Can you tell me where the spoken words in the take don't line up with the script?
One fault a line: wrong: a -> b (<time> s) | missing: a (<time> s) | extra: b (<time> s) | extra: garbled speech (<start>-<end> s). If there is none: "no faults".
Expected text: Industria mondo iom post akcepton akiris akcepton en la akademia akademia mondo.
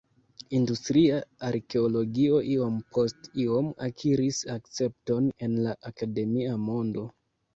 wrong: mondo -> arkeologio (1.5 s)
wrong: akcepton -> iom (3.4 s)
missing: akademia (6.6 s)